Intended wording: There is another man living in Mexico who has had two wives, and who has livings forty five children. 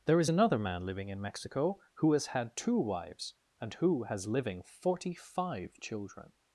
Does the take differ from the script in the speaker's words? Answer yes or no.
yes